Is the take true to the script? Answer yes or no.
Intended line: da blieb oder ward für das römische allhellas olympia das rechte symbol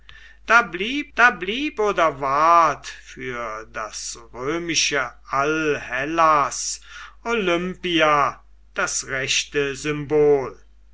no